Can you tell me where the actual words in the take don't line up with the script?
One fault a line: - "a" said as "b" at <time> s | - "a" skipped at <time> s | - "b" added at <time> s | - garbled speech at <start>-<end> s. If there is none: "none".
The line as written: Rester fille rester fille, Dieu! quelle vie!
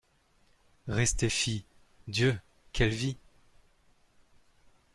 - "rester fille" skipped at 1.6 s